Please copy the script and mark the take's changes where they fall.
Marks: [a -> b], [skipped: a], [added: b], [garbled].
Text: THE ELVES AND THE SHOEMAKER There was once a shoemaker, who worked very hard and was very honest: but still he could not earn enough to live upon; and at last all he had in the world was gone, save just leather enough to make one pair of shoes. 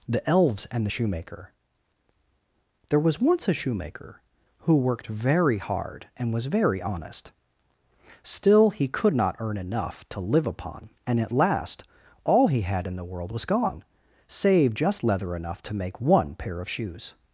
THE ELVES AND THE SHOEMAKER There was once a shoemaker, who worked very hard and was very honest: [skipped: but] still he could not earn enough to live upon; and at last all he had in the world was gone, save just leather enough to make one pair of shoes.